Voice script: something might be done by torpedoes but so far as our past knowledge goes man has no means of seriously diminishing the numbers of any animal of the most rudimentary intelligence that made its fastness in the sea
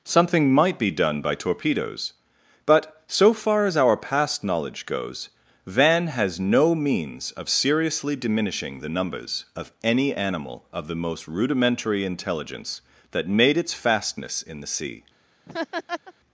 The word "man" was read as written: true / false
false